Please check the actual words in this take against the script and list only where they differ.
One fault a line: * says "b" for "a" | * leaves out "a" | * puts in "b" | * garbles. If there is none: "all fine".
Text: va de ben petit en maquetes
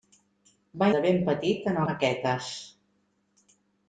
all fine